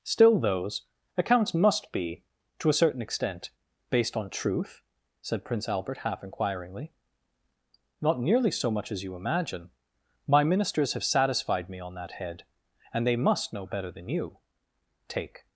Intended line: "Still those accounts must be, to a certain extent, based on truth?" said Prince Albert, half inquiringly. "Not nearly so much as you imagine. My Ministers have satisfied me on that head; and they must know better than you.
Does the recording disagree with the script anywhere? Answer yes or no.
yes